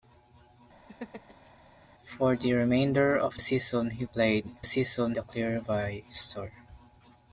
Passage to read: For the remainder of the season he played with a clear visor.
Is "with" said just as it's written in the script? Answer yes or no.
no